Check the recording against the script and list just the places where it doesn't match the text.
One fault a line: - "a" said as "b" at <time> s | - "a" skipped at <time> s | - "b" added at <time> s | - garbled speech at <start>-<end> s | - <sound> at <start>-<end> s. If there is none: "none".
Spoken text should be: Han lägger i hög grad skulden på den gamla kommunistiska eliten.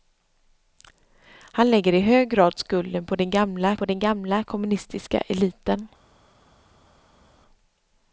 - "på den gamla" added at 3.8 s